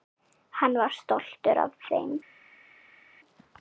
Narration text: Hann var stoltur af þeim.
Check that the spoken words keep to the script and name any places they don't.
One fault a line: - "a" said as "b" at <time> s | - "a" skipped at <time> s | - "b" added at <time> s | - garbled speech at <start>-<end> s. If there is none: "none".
none